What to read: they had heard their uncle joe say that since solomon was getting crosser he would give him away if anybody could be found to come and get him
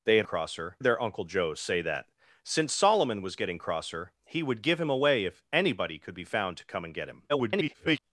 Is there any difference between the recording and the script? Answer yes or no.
yes